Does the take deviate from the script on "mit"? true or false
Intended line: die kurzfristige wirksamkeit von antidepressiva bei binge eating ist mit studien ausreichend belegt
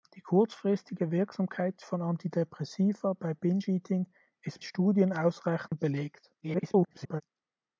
true